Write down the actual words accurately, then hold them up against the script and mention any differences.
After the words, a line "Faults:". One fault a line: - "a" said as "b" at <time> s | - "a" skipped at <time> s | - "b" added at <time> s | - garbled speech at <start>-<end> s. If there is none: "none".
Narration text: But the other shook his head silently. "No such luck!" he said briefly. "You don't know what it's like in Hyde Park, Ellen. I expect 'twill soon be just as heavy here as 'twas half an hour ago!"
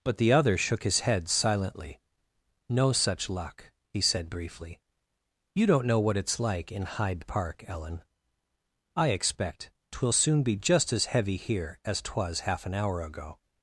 But the other shook his head silently. "No such luck!" he said briefly. "You don't know what it's like in Hyde Park, Ellen. I expect 'twill soon be just as heavy here as 'twas half an hour ago!"
Faults:
none